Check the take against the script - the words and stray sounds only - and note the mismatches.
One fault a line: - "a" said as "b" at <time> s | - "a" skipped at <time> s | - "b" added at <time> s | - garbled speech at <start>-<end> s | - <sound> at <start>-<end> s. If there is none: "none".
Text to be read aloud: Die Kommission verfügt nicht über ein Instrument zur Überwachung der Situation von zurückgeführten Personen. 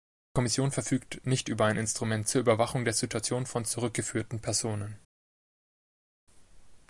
none